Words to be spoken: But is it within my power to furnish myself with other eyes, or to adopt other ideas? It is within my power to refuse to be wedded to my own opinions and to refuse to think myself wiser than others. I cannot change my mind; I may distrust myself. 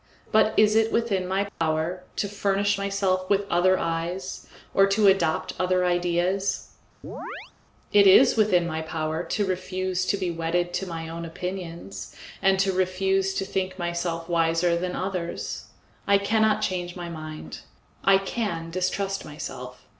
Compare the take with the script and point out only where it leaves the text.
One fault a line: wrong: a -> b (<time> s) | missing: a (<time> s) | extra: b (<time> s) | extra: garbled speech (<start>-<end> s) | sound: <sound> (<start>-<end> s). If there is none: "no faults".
sound: dropout (1.5-1.6 s)
sound: chirp (7.0-7.5 s)
wrong: may -> can (18.2 s)